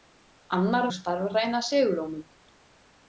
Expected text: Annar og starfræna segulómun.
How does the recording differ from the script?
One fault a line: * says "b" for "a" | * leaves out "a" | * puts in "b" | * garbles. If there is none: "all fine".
all fine